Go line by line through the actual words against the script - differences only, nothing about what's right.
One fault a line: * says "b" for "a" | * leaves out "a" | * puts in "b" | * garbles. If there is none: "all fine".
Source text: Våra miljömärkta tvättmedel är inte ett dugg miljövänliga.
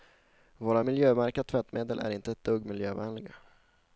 all fine